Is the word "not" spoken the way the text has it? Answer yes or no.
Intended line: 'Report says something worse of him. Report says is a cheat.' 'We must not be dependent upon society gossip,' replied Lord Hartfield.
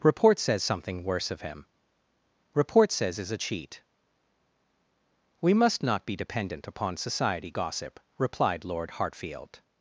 yes